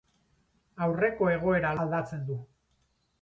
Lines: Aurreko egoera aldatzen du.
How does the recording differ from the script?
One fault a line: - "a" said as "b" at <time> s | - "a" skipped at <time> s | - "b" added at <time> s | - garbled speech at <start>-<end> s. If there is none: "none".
none